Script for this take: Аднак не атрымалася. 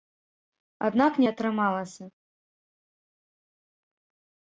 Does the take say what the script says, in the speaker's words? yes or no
yes